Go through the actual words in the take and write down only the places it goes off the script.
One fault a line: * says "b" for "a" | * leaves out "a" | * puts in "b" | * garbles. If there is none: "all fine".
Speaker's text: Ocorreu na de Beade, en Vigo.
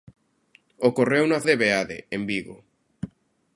all fine